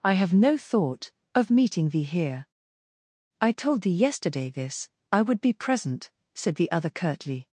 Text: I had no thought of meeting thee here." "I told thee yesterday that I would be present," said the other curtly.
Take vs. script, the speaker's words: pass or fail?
fail